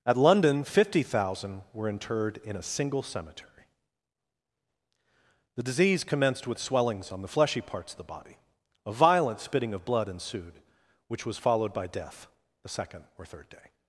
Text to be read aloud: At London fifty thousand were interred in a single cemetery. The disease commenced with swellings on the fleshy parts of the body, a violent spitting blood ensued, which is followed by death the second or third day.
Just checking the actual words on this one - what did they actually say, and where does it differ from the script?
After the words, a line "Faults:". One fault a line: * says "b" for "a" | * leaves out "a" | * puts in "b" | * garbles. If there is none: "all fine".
At London fifty thousand were interred in a single cemetery. The disease commenced with swellings on the fleshy parts of the body, a violent spitting of blood ensued, which was followed by death the second or third day.
Faults:
* puts in "of"
* says "was" for "is"